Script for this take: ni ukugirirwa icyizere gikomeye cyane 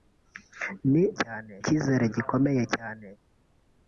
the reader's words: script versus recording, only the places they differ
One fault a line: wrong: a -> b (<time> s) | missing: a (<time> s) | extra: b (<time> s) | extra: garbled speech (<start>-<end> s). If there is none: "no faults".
wrong: ukugirirwa -> cyane (1.2 s)